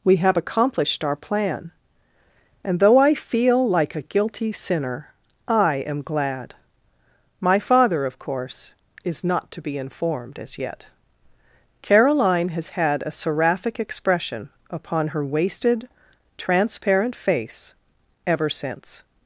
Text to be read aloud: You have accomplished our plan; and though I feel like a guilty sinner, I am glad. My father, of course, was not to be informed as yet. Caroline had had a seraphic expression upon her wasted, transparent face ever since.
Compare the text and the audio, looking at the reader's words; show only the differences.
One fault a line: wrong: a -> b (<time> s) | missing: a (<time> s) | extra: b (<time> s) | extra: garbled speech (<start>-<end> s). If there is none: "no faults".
wrong: You -> We (0.0 s)
wrong: was -> is (9.0 s)
wrong: had -> has (12.5 s)